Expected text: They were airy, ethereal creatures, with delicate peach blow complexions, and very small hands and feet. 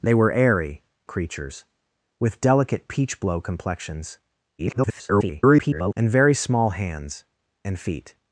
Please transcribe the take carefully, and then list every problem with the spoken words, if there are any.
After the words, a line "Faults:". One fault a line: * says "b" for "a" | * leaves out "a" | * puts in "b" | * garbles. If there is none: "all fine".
They were airy, creatures, with delicate peach blow complexions, [garbled] and very small hands and feet.
Faults:
* leaves out "ethereal"
* garbles